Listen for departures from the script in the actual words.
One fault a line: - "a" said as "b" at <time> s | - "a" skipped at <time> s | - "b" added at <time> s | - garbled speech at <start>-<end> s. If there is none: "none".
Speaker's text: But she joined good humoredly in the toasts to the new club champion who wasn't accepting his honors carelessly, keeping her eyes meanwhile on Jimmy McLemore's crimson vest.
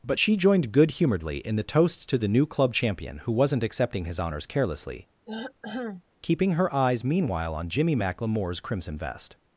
none